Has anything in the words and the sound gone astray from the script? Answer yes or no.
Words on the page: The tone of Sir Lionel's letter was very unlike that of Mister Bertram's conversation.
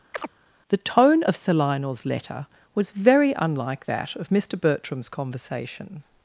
yes